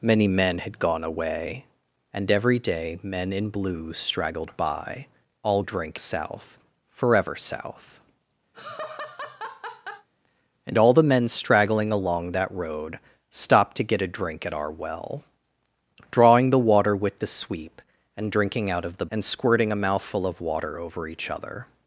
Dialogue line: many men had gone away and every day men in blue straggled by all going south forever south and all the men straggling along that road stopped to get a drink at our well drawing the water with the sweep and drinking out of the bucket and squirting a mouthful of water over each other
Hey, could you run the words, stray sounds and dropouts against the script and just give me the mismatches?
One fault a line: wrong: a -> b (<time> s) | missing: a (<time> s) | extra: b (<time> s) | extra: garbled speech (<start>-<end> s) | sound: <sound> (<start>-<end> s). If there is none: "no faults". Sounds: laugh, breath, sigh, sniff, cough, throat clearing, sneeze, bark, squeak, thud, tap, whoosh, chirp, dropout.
wrong: going -> drink (5.6 s)
sound: laugh (8.5-10.1 s)
missing: bucket (19.1 s)